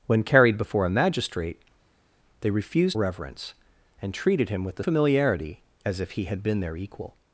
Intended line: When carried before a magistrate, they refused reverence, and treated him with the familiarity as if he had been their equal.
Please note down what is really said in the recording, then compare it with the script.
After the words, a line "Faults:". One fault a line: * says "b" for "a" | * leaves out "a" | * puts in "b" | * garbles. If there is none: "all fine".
When carried before a magistrate, they refused reverence, and treated him with the familiarity as if he had been their equal.
Faults:
all fine